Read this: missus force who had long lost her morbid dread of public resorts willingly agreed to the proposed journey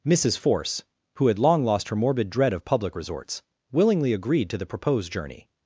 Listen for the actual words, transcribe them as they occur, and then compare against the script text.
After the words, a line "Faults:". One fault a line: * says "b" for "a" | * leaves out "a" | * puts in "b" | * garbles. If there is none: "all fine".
missus force who had long lost her morbid dread of public resorts willingly agreed to the proposed journey
Faults:
all fine